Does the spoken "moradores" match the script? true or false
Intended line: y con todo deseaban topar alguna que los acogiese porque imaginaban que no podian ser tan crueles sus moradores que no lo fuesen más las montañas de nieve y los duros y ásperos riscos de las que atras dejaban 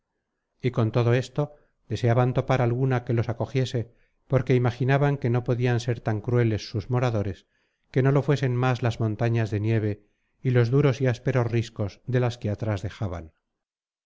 true